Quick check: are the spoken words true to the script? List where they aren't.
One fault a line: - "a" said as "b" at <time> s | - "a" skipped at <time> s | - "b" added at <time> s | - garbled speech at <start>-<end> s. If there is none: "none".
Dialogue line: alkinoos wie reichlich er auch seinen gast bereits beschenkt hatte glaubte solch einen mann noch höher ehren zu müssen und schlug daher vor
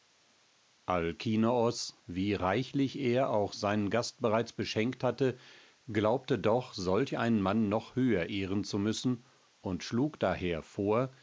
- "doch" added at 6.4 s